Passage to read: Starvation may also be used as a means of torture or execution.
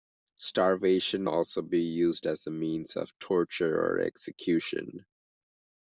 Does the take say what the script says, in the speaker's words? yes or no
no